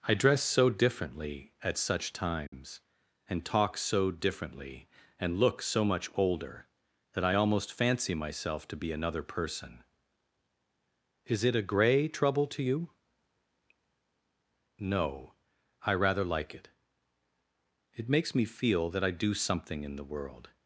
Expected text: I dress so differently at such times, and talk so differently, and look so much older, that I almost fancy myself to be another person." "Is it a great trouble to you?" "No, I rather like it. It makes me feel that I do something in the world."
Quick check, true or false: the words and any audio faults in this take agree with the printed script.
false